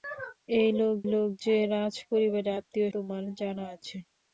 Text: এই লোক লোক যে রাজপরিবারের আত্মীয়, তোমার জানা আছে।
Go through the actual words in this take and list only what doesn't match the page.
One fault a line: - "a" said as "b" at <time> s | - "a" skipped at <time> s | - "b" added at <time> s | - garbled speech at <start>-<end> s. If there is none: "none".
none